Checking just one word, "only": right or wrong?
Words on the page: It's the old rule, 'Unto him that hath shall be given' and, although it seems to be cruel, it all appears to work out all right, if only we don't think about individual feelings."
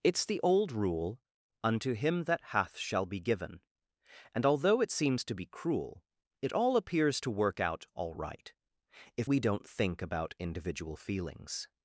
wrong